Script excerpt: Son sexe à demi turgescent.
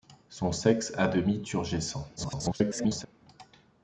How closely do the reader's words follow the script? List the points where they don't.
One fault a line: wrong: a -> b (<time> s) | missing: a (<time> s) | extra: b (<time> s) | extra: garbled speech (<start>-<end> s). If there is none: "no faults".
extra: garbled speech (2.2-3.1 s)